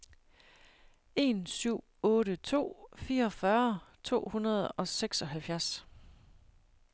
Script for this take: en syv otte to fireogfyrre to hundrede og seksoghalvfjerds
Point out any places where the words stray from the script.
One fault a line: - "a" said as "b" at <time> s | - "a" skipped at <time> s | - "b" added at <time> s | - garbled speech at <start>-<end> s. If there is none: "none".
none